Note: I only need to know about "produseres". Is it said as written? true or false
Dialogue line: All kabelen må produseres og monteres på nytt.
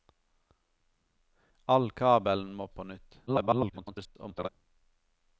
false